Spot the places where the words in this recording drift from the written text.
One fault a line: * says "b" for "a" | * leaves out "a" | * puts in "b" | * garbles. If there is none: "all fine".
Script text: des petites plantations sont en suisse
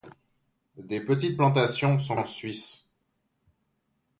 all fine